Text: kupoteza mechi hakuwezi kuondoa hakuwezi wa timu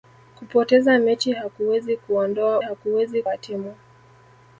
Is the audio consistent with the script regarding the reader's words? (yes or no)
yes